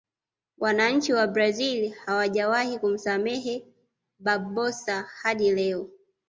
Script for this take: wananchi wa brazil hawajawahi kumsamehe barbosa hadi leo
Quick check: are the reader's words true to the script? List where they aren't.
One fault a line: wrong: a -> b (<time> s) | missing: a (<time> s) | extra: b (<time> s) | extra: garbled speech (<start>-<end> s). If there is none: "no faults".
no faults